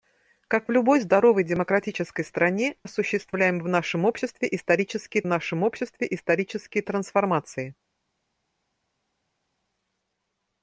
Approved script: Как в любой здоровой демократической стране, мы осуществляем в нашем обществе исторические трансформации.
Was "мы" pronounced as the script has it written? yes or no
no